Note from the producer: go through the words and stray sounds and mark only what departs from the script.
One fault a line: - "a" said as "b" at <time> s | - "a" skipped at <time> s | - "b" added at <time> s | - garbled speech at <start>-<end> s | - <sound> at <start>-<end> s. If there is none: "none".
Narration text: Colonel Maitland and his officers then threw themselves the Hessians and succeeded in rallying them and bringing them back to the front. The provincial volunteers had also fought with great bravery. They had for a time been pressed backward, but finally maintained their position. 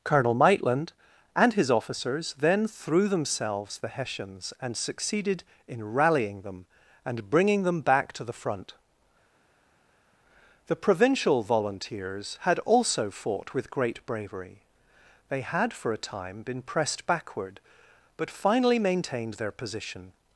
none